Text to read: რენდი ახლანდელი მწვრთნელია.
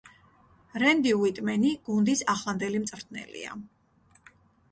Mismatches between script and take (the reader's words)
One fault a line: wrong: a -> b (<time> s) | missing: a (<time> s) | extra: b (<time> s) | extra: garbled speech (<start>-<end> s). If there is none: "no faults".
extra: უიტმენი გუნდის (1.2 s)